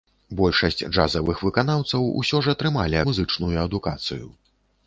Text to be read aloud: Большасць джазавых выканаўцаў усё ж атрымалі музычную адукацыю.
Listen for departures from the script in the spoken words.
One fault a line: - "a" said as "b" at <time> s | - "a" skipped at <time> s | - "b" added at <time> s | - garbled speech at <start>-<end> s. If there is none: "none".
none